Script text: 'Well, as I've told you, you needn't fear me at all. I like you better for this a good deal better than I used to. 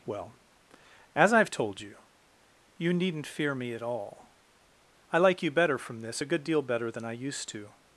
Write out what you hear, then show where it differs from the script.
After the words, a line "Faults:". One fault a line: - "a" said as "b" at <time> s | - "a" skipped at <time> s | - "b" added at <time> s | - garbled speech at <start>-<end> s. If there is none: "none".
'Well, as I've told you, you needn't fear me at all. I like you better from this a good deal better than I used to.
Faults:
- "for" said as "from" at 5.8 s